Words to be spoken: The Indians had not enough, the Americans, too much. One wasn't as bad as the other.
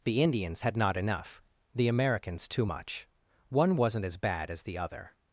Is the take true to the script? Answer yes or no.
yes